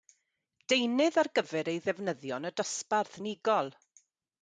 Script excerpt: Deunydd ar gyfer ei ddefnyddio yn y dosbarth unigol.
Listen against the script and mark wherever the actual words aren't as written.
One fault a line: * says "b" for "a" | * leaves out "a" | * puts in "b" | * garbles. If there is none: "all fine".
all fine